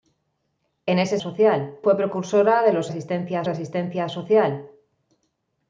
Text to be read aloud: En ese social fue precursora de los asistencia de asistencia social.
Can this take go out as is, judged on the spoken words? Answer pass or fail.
pass